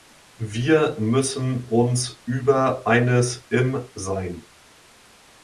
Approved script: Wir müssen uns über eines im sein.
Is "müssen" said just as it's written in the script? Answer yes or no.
yes